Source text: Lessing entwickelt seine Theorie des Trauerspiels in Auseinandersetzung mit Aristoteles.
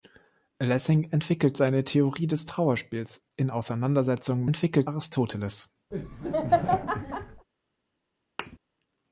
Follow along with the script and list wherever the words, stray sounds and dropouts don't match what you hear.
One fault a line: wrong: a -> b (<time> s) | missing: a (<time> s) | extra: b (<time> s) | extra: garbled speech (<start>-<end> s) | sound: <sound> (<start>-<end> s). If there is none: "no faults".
wrong: mit -> entwickelt (4.4 s)
sound: laugh (5.9-7.5 s)
sound: thud (8.4-8.6 s)